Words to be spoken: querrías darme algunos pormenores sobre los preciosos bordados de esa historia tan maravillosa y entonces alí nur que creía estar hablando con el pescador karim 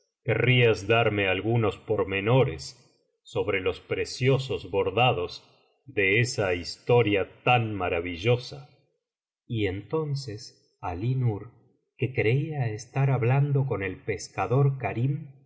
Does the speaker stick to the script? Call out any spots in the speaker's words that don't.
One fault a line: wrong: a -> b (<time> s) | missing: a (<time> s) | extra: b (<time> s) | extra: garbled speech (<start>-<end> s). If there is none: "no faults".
no faults